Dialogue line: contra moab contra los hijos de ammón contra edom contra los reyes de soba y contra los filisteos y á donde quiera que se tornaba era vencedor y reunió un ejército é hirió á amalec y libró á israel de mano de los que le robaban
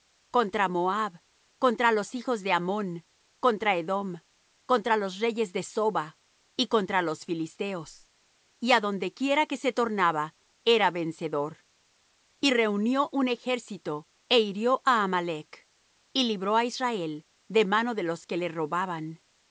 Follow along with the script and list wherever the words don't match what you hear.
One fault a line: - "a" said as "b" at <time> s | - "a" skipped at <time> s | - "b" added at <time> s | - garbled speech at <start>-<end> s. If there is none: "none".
none